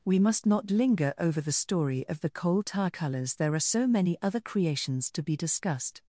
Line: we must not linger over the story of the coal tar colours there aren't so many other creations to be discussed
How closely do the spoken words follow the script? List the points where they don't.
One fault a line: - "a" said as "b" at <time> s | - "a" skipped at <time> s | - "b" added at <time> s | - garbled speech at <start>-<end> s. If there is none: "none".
- "aren't" said as "are" at 3.5 s